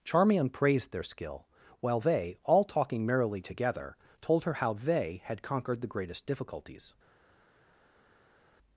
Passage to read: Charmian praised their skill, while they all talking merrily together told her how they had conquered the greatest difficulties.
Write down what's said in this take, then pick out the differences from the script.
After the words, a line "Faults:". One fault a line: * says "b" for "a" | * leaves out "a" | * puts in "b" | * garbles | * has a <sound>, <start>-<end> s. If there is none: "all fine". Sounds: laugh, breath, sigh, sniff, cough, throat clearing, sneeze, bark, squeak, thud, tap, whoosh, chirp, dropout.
Charmian praised their skill, while they all talking merrily together told her how they had conquered the greatest difficulties.
Faults:
all fine